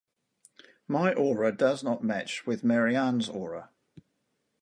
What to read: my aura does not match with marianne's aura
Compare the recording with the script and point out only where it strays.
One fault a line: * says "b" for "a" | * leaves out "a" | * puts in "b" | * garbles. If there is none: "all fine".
all fine